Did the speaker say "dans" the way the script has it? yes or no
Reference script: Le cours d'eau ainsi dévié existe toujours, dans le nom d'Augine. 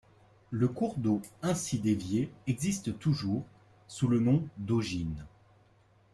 no